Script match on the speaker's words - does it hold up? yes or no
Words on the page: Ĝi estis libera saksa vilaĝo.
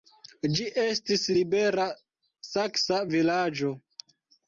yes